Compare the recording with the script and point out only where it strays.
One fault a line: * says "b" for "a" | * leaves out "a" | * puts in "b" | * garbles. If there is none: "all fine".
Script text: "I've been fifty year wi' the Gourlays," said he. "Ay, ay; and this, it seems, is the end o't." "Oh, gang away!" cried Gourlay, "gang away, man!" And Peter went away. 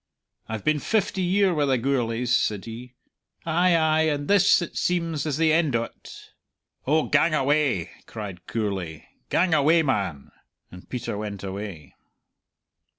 all fine